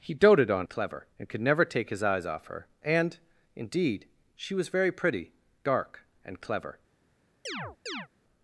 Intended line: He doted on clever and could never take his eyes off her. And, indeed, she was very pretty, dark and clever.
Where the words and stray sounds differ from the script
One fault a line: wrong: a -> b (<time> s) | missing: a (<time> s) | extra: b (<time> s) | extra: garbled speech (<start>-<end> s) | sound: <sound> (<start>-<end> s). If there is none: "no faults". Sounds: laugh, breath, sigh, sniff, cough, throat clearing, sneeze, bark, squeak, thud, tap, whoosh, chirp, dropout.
sound: chirp (7.5-8.1 s)